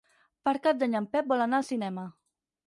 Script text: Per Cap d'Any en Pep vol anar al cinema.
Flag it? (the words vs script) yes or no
no